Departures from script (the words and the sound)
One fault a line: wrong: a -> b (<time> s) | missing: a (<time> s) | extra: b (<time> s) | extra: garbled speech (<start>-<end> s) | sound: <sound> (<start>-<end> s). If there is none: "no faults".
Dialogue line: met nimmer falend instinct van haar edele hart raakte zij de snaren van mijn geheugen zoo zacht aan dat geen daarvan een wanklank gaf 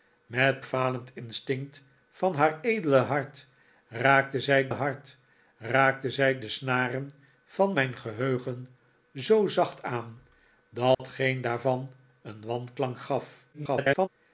missing: nimmer (0.7 s)
extra: hart raakte zij (4.7 s)
sound: dropout (10.9-11.0 s)
extra: garbled speech (13.5-14.1 s)